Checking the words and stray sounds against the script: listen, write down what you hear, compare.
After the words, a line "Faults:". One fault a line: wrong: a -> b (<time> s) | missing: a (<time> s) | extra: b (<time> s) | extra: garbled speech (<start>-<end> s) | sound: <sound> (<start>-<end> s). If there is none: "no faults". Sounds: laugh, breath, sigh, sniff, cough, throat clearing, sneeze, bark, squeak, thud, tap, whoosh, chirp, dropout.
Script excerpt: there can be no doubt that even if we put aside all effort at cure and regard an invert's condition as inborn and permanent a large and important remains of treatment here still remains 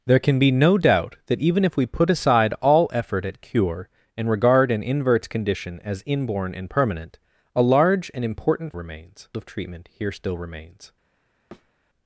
there can be no doubt that even if we put aside all effort at cure and regard an invert's condition as inborn and permanent a large and important remains of treatment here still remains
Faults:
sound: thud (11.5-11.7 s)